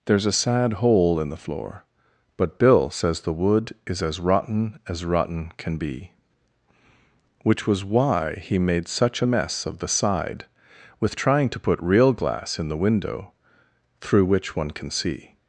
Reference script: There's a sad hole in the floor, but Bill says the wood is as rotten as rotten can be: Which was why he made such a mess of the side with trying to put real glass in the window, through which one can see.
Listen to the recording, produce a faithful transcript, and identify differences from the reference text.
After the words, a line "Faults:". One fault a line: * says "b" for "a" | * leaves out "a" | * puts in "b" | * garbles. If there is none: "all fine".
There's a sad hole in the floor, but Bill says the wood is as rotten as rotten can be: Which was why he made such a mess of the side with trying to put real glass in the window, through which one can see.
Faults:
all fine